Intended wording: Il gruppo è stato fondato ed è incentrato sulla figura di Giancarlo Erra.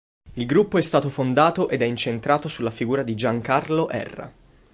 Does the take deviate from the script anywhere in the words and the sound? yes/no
no